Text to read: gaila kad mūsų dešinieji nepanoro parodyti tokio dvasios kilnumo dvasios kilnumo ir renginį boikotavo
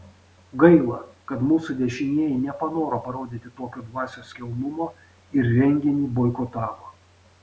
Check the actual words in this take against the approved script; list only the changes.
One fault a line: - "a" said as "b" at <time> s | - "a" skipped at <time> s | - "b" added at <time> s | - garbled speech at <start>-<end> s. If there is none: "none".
- "dvasios kilnumo" skipped at 4.9 s